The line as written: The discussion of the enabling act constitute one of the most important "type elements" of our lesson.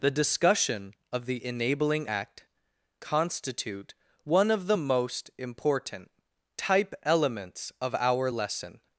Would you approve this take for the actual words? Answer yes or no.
yes